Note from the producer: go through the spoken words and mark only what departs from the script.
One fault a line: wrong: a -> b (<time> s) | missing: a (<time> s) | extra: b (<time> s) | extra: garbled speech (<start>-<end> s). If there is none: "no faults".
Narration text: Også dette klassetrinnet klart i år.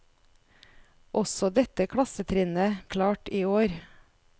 no faults